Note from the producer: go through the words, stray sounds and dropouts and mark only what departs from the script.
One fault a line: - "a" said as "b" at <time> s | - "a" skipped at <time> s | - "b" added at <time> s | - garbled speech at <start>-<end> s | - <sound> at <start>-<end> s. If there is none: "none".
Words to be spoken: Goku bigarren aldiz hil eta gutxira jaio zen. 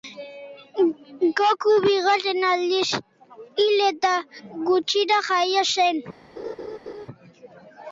- laugh at 6.4-7.1 s